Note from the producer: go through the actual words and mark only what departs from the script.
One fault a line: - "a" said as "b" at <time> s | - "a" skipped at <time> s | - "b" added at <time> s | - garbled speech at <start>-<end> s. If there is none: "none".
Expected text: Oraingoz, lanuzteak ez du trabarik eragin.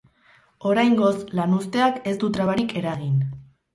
none